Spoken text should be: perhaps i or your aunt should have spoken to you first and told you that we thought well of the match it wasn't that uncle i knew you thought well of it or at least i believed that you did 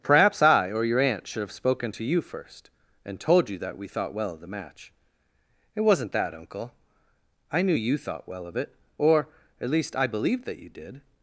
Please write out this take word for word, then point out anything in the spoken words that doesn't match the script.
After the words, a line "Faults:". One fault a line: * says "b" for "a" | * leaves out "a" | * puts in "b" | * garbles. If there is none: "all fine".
perhaps i or your aunt should have spoken to you first and told you that we thought well of the match it wasn't that uncle i knew you thought well of it or at least i believed that you did
Faults:
all fine